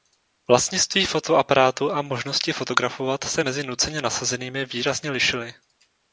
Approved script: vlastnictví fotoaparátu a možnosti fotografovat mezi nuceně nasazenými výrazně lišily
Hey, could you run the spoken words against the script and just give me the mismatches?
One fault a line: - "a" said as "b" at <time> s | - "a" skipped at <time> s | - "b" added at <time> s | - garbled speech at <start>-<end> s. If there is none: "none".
- "se" added at 3.2 s